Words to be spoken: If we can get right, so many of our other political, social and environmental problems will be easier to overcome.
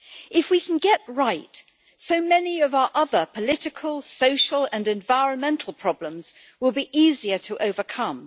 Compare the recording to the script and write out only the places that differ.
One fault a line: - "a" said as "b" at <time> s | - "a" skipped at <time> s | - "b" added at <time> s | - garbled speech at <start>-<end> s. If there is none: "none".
none